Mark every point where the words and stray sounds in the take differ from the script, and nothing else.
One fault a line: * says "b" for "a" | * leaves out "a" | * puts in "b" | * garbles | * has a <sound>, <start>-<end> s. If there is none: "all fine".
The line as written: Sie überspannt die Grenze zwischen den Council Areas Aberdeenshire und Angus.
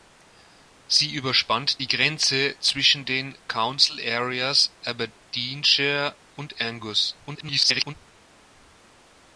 * garbles